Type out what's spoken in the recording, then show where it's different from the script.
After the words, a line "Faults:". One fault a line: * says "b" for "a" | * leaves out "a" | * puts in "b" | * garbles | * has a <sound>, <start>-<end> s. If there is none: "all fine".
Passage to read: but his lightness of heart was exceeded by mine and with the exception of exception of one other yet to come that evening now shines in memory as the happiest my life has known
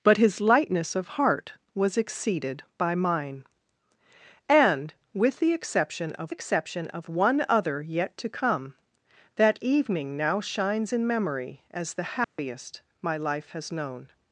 but his lightness of heart was exceeded by mine and with the exception of exception of one other yet to come that evening now shines in memory as the happiest my life has known
Faults:
* has a dropout, 12.2-12.4 s